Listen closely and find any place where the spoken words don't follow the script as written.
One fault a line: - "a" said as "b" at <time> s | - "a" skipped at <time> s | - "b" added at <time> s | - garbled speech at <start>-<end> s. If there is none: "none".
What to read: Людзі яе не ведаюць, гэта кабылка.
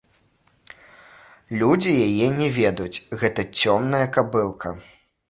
- "цёмная" added at 3.6 s